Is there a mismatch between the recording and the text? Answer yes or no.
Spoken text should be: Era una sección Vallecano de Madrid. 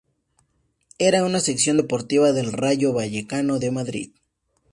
yes